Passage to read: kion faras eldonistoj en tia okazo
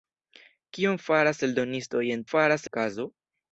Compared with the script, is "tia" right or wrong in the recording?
wrong